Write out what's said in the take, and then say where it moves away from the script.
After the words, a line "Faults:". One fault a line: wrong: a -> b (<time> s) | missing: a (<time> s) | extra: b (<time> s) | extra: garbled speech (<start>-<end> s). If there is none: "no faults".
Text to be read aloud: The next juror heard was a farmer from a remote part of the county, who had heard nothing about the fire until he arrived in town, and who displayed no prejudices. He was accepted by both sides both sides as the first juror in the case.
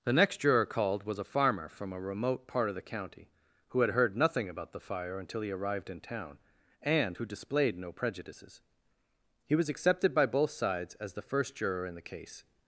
The next juror called was a farmer from a remote part of the county, who had heard nothing about the fire until he arrived in town, and who displayed no prejudices. He was accepted by both sides as the first juror in the case.
Faults:
wrong: heard -> called (0.7 s)
missing: both sides (10.9 s)